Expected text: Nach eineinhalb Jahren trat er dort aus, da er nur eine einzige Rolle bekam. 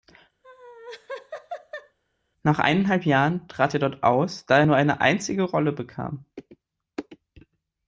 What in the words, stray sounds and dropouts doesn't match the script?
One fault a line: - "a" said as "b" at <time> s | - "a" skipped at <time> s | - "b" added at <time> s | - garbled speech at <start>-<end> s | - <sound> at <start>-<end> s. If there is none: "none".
- laugh at 0.4-2.0 s